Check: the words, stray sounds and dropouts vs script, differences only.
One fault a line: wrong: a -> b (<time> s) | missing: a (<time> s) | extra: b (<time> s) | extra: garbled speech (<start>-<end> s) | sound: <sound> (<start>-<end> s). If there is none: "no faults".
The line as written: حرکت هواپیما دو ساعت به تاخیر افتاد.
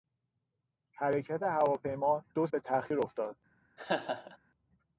missing: ساعت (2.5 s)
sound: laugh (3.8-4.4 s)